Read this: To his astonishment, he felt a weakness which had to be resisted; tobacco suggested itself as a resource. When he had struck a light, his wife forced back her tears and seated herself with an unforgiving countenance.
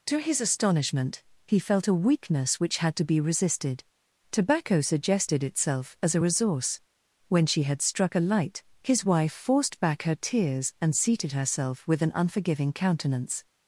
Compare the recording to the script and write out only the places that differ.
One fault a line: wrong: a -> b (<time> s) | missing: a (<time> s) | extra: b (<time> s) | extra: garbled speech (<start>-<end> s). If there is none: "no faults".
wrong: he -> she (7.4 s)